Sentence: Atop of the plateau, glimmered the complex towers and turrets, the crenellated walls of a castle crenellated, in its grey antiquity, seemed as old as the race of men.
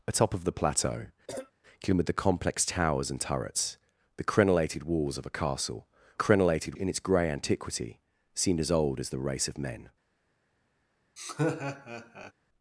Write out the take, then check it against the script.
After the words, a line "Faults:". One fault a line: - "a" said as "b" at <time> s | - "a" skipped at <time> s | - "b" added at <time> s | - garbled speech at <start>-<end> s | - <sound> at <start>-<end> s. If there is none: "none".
Atop of the plateau, glimmered the complex towers and turrets, the crenellated walls of a castle crenellated, in its grey antiquity, seemed as old as the race of men.
Faults:
- cough at 1.3-1.5 s
- laugh at 11.2-12.3 s